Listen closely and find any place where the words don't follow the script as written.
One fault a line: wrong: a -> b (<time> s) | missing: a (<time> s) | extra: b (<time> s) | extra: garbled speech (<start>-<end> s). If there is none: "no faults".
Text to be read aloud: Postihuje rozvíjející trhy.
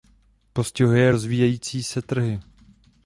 extra: se (1.8 s)